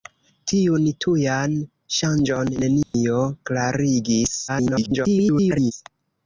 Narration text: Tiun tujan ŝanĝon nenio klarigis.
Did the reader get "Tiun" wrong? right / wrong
right